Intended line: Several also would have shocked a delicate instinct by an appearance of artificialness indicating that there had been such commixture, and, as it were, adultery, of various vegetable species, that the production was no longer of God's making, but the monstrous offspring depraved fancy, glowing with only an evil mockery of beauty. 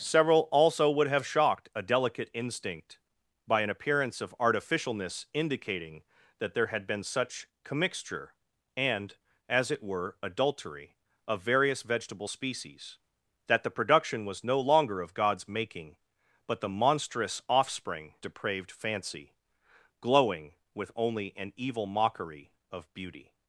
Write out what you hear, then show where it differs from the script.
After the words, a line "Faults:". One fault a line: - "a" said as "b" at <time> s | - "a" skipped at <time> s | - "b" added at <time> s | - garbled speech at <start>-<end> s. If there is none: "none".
Several also would have shocked a delicate instinct by an appearance of artificialness indicating that there had been such commixture, and, as it were, adultery, of various vegetable species, that the production was no longer of God's making, but the monstrous offspring depraved fancy, glowing with only an evil mockery of beauty.
Faults:
none